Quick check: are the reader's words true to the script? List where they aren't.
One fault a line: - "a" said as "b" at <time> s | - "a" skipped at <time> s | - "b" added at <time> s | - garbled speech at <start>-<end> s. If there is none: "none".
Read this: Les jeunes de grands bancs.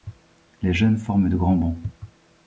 - "forment" added at 1.0 s